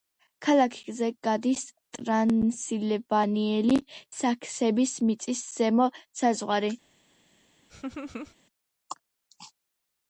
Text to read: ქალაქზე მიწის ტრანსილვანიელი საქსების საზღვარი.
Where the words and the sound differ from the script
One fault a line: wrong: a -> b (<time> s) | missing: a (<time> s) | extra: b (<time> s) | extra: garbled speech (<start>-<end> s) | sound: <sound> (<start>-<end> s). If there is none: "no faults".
wrong: მიწის -> გადის (1.3 s)
extra: მიწის ზემო (5.1 s)
sound: laugh (7.7-8.4 s)